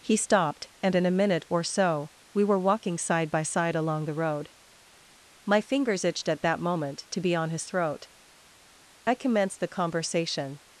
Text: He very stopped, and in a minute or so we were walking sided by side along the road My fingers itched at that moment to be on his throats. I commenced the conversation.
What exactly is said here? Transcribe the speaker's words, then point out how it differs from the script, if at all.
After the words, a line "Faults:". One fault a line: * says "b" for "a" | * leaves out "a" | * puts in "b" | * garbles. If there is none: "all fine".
He stopped, and in a minute or so we were walking side by side along the road My fingers itched at that moment to be on his throat. I commenced the conversation.
Faults:
* leaves out "very"
* says "side" for "sided"
* says "throat" for "throats"